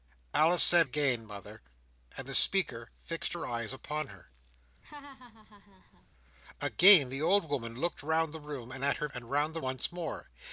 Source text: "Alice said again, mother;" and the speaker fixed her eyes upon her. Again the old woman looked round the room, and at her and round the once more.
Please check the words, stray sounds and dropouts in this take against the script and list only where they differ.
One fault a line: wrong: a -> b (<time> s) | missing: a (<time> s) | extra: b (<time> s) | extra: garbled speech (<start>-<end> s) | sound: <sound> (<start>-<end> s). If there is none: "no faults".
sound: laugh (4.8-6.1 s)